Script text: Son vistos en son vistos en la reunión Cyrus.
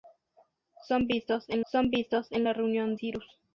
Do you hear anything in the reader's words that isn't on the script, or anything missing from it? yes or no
no